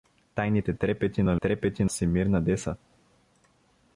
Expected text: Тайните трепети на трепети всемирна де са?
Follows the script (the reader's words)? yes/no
yes